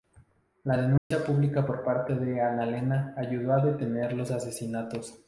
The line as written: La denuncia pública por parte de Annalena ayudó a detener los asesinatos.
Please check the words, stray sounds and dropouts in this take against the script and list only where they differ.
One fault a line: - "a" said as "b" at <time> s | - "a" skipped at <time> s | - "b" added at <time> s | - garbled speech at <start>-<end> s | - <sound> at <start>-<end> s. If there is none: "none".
- dropout at 1.0-1.1 s